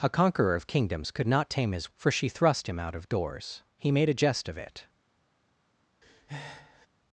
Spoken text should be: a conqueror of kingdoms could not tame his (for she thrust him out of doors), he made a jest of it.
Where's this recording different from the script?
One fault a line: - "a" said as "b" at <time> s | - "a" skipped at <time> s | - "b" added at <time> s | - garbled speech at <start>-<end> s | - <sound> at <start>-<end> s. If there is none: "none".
- breath at 6.0-6.9 s